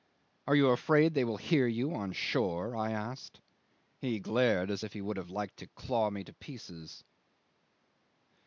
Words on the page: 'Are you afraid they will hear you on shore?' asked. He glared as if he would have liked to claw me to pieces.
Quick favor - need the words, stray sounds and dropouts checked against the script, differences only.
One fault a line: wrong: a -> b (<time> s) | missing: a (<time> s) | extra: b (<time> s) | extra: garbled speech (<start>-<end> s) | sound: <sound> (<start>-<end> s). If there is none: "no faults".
extra: I (2.8 s)